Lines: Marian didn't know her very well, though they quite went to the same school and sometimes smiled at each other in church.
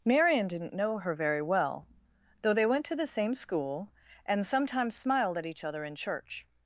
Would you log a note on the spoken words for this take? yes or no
yes